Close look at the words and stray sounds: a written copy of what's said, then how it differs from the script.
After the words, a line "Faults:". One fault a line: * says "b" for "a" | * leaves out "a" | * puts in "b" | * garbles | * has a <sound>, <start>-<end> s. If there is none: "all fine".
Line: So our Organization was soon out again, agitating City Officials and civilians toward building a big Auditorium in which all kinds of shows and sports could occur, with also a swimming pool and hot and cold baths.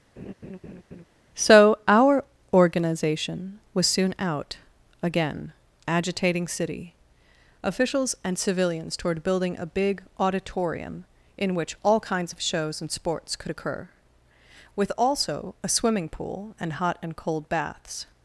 So our Organization was soon out again, agitating City Officials and civilians toward building a big Auditorium in which all kinds of shows and sports could occur, with also a swimming pool and hot and cold baths.
Faults:
* has a laugh, 0.2-1.0 s